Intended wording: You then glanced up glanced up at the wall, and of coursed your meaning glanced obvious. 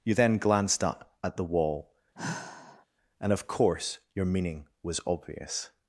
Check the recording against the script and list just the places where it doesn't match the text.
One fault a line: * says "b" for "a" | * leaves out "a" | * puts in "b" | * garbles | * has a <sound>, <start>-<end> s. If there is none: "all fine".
* leaves out "glanced up"
* has a sigh, 2.1-2.9 s
* says "course" for "coursed"
* says "was" for "glanced"